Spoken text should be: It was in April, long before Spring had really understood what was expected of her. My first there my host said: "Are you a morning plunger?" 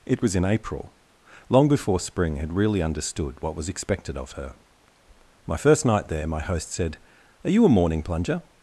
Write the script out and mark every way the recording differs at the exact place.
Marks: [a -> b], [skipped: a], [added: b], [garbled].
It was in April, long before Spring had really understood what was expected of her. My first [added: night] there my host said: "Are you a morning plunger?"